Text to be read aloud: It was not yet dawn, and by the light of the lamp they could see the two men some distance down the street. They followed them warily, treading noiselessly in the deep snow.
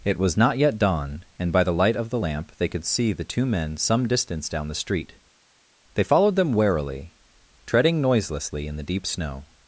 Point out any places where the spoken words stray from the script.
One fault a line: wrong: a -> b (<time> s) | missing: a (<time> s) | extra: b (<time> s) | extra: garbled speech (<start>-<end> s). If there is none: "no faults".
no faults